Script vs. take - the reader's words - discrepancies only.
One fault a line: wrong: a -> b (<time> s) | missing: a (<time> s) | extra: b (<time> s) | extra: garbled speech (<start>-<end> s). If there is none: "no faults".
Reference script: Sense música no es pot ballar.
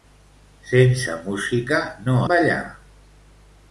missing: es pot (2.2 s)